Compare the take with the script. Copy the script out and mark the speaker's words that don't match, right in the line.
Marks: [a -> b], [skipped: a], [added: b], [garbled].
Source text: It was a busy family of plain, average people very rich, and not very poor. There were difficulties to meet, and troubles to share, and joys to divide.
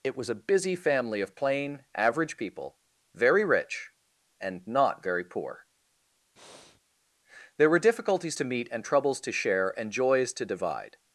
It was a busy family of plain, average people very rich, and not very poor. There were difficulties to meet, and troubles to share, and joys to divide.